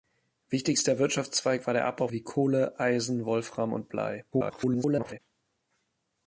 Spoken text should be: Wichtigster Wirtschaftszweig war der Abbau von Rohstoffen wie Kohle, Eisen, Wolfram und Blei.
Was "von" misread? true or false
true